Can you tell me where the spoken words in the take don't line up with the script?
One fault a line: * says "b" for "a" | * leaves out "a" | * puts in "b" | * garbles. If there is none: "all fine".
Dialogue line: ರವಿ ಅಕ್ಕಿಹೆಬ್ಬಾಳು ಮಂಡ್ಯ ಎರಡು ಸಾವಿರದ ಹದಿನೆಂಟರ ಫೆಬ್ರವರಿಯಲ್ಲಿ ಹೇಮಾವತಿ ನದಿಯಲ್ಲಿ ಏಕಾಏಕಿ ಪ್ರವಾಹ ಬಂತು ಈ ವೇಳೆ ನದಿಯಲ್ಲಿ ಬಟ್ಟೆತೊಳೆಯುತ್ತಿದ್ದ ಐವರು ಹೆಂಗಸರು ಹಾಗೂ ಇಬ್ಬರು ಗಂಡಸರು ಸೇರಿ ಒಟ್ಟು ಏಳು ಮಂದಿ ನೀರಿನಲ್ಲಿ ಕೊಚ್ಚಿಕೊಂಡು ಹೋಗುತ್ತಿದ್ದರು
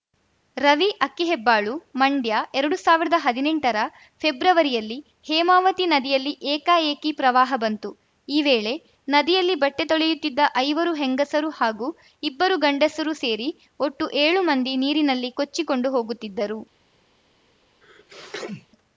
all fine